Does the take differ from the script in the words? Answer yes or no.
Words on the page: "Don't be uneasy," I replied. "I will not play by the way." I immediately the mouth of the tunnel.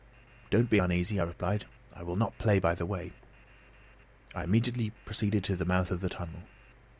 yes